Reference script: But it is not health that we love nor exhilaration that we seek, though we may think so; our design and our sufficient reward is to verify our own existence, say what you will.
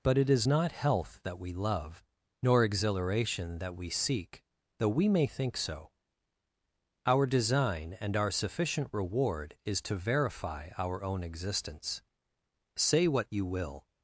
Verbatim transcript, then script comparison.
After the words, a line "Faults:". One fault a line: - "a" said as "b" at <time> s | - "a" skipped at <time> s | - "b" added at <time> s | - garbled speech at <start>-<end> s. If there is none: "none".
But it is not health that we love nor exhilaration that we seek, though we may think so; our design and our sufficient reward is to verify our own existence, say what you will.
Faults:
none